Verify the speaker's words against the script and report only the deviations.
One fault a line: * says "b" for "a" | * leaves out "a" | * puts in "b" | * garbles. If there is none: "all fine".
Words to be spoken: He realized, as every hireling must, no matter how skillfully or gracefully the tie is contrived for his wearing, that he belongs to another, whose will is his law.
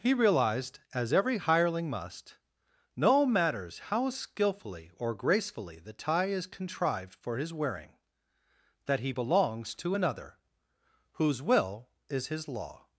* says "matters" for "matter"